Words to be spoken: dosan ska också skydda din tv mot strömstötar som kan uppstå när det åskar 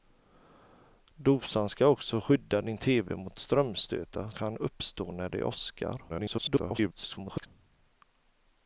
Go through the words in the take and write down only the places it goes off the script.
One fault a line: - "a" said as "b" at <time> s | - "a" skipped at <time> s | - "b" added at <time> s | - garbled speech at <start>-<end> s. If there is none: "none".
- "som" skipped at 4.3 s
- garbled speech at 6.1-7.5 s